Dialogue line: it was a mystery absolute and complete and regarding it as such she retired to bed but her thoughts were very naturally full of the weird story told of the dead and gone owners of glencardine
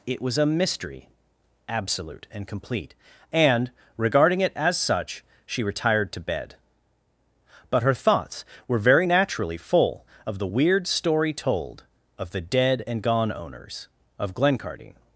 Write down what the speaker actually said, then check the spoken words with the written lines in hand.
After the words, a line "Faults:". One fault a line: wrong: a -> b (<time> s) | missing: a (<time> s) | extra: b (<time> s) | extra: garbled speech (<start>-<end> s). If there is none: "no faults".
it was a mystery absolute and complete and regarding it as such she retired to bed but her thoughts were very naturally full of the weird story told of the dead and gone owners of glencardine
Faults:
no faults